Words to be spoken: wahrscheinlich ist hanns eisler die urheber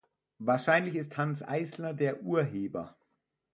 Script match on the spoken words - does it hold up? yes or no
no